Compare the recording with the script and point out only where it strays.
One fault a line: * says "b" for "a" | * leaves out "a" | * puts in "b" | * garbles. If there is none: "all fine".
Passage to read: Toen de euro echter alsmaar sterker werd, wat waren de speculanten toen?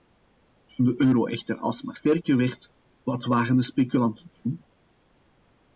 all fine